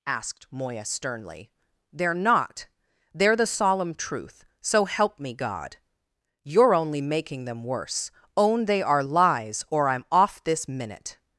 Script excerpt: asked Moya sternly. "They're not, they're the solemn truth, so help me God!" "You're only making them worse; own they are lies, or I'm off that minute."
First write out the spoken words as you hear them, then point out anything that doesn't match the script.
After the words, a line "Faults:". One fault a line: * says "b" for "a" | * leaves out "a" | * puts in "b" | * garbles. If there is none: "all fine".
asked Moya sternly. "They're not, they're the solemn truth, so help me God!" "You're only making them worse; own they are lies, or I'm off this minute."
Faults:
* says "this" for "that"